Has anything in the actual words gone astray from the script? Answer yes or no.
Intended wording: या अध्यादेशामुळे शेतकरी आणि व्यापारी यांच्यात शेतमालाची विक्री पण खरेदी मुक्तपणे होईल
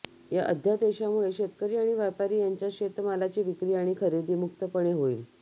yes